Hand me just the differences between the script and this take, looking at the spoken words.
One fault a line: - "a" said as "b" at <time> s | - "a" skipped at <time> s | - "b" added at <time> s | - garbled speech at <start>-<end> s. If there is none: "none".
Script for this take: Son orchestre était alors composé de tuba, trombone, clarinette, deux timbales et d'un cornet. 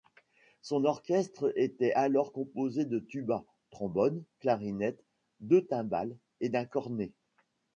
none